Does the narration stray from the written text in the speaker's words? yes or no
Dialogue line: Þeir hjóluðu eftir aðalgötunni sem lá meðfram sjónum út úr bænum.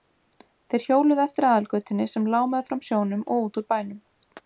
yes